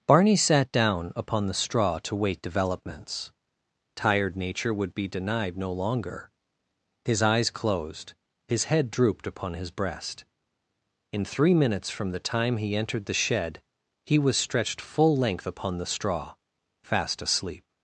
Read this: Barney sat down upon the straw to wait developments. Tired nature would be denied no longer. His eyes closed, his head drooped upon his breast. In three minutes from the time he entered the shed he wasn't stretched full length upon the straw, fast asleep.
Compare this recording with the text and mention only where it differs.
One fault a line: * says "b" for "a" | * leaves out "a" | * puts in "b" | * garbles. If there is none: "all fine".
* says "was" for "wasn't"